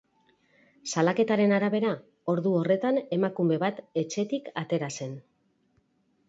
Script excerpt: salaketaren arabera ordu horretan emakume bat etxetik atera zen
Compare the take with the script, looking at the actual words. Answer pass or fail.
pass